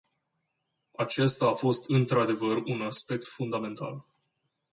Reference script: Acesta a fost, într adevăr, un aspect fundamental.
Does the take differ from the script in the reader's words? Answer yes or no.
no